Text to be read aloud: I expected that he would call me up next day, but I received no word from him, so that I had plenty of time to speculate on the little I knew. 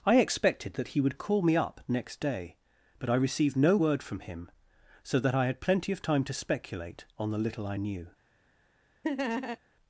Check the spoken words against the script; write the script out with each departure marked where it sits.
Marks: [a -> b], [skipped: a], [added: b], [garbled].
I expected that he would call me up next day, but I received no word from him, so that I had plenty of time to speculate on the little I knew.